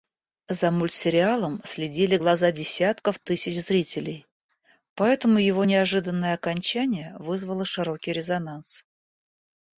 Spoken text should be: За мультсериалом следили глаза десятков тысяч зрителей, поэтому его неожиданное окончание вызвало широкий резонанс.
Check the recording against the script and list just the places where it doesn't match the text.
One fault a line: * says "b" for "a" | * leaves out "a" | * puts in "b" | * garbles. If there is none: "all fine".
all fine